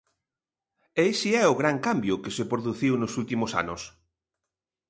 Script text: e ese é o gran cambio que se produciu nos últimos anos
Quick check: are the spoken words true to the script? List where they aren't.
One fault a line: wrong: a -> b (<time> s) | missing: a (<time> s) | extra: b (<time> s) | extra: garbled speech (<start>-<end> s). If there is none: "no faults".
no faults